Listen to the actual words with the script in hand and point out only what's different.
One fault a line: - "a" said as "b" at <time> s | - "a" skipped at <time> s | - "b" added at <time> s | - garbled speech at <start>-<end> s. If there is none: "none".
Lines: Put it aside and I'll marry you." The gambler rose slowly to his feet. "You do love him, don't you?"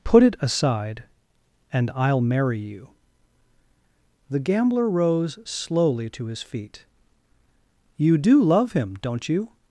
none